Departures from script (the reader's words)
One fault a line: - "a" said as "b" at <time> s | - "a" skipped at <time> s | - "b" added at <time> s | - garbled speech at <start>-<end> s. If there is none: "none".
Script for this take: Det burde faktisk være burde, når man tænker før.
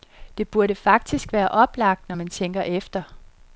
- "burde" said as "oplagt" at 1.5 s
- "før" said as "efter" at 2.6 s